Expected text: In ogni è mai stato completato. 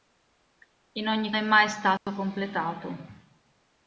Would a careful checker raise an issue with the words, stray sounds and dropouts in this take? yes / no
yes